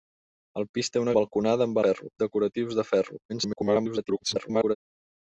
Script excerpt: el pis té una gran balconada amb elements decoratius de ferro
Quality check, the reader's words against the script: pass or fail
fail